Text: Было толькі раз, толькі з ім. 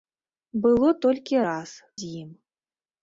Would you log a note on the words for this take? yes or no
yes